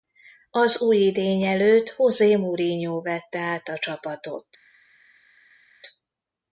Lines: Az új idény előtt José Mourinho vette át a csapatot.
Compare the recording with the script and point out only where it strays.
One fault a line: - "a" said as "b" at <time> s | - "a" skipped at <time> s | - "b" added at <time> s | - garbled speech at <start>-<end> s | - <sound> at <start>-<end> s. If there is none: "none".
none